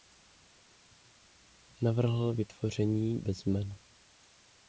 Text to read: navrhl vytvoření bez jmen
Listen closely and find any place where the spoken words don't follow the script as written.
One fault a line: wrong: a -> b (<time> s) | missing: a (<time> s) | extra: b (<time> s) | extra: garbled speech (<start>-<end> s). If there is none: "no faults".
no faults